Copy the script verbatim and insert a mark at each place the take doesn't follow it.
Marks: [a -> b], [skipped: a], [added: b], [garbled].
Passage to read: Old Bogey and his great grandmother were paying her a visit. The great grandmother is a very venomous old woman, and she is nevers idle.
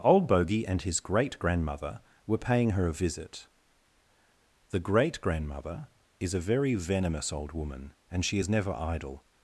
Old Bogey and his great grandmother were paying her a visit. The great grandmother is a very venomous old woman, and she is [nevers -> never] idle.